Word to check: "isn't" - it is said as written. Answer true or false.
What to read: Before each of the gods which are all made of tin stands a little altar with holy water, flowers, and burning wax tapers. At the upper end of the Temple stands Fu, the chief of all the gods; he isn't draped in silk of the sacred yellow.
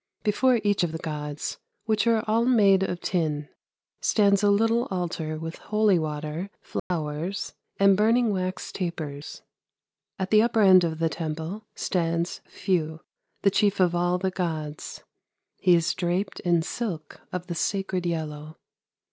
false